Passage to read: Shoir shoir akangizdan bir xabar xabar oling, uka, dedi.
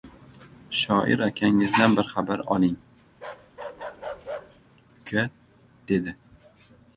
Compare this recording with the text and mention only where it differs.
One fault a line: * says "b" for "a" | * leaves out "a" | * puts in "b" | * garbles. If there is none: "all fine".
* leaves out "shoir"
* leaves out "xabar"